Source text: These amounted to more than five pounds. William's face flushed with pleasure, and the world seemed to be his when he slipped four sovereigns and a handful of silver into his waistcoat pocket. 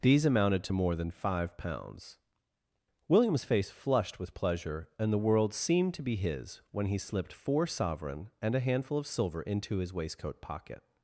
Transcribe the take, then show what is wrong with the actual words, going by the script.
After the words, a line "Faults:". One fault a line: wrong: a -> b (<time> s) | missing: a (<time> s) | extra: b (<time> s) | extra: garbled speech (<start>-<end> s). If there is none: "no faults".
These amounted to more than five pounds. William's face flushed with pleasure, and the world seemed to be his when he slipped four sovereign and a handful of silver into his waistcoat pocket.
Faults:
wrong: sovereigns -> sovereign (7.7 s)